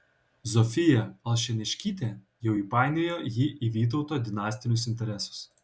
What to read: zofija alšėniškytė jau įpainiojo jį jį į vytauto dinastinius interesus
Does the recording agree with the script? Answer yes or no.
no